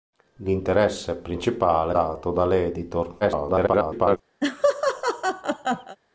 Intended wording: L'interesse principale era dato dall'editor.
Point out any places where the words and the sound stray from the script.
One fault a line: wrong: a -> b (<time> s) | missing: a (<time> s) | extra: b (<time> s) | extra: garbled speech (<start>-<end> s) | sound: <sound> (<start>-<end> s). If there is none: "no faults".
missing: era (1.9 s)
extra: garbled speech (3.2-4.2 s)
sound: laugh (4.4-6.0 s)